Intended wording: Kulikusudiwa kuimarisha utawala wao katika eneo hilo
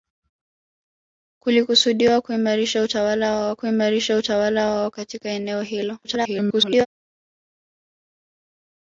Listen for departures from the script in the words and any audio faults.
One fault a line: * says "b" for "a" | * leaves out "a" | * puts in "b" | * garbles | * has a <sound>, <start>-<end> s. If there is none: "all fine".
* puts in "kuimarisha utawala wao"
* garbles